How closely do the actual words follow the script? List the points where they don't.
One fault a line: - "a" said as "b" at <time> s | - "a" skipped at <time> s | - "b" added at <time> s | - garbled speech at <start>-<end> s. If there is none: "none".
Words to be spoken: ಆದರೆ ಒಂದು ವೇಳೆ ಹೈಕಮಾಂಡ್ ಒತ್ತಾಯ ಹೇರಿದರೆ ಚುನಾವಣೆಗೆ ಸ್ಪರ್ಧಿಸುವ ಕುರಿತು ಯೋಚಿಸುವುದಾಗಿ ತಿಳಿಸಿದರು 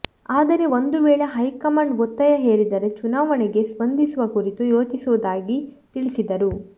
none